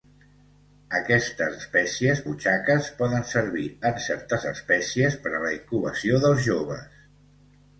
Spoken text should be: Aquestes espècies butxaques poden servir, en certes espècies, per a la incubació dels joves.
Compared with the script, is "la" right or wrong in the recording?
right